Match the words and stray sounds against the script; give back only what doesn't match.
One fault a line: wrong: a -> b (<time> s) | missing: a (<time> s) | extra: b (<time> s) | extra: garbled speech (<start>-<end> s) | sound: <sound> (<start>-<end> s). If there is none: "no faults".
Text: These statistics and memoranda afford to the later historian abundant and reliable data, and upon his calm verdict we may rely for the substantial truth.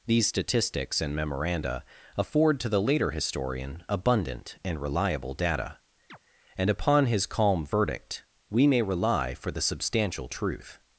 sound: chirp (6.1-6.2 s)